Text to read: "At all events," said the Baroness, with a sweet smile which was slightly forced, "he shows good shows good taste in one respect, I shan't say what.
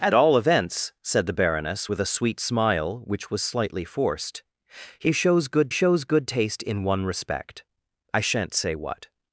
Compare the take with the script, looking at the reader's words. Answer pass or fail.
pass